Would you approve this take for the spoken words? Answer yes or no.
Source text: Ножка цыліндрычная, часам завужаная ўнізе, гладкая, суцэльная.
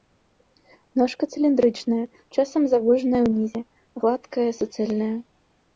yes